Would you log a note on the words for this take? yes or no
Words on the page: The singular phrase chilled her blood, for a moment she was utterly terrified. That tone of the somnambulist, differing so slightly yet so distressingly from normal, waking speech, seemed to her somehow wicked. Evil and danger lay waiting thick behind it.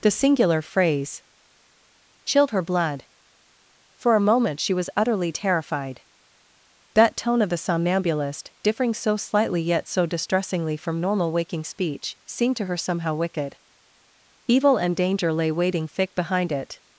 no